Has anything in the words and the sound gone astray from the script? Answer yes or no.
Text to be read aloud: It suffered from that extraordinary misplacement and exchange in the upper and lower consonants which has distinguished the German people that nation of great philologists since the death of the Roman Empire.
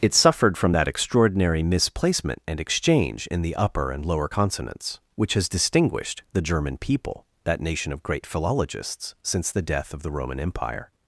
no